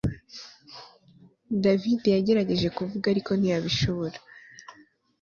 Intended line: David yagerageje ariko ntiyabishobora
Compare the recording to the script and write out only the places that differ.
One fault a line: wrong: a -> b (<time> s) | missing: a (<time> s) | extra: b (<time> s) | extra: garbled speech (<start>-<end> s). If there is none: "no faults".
extra: kuvuga (2.8 s)